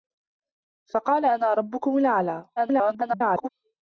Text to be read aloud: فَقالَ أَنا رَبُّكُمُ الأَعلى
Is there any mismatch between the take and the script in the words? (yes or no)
yes